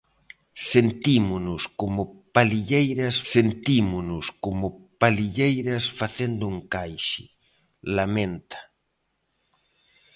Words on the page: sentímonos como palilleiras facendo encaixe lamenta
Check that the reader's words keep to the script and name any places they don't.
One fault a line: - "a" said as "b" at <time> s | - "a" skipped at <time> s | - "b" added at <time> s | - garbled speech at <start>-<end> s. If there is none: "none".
- "sentímonos como palilleiras" added at 3.3 s